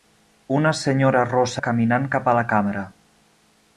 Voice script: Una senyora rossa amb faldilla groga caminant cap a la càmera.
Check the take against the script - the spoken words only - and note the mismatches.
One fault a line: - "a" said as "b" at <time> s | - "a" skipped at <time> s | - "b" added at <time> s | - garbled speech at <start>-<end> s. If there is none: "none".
- "amb faldilla groga" skipped at 1.6 s